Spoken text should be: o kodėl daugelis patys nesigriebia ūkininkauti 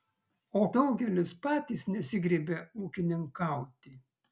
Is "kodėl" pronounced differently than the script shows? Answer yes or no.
yes